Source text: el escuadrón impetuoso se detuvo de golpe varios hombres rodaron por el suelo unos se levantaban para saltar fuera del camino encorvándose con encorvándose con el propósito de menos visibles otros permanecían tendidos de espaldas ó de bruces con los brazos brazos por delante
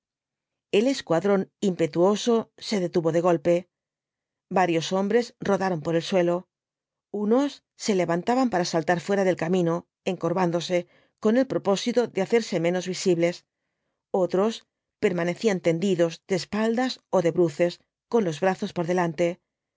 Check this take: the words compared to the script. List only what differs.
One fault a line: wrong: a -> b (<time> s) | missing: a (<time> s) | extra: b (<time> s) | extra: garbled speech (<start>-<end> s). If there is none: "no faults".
missing: encorvándose con (11.4 s)
extra: hacerse (12.2 s)
missing: brazos (18.7 s)